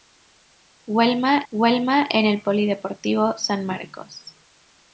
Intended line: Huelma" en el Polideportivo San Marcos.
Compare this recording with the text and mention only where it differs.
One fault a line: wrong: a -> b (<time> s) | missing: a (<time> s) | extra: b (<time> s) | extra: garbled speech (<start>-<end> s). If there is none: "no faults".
extra: huelma (1.5 s)